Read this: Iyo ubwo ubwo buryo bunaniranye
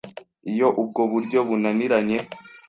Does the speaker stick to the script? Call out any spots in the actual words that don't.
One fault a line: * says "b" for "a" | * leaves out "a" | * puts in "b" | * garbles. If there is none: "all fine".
* leaves out "ubwo"